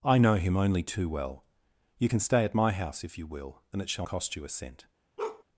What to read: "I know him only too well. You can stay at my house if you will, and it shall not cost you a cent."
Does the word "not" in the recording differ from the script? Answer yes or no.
yes